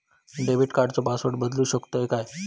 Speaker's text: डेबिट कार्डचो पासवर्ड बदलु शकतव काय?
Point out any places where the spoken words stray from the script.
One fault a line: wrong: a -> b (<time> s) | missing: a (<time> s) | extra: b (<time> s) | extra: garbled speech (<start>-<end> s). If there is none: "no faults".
no faults